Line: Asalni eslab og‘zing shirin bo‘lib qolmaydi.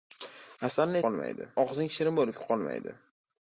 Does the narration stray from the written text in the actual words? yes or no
yes